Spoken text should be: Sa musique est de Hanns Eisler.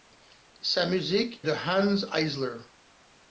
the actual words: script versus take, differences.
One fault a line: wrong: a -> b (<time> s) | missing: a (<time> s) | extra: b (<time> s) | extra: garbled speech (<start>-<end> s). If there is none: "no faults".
missing: est (1.5 s)